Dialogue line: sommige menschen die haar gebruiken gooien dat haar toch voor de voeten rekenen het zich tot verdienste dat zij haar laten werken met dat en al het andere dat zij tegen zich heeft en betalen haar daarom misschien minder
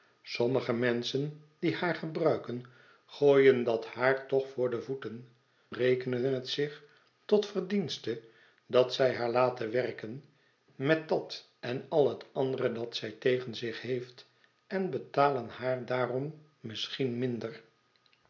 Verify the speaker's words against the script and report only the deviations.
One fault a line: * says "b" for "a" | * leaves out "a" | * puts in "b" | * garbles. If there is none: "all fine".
all fine